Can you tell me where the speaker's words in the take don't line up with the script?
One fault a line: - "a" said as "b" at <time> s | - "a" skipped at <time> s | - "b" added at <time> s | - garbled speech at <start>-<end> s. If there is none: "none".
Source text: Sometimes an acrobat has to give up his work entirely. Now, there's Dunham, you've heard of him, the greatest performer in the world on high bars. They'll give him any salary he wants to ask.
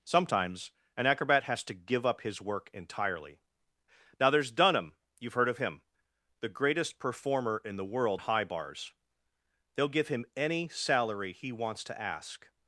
- "on" skipped at 8.2 s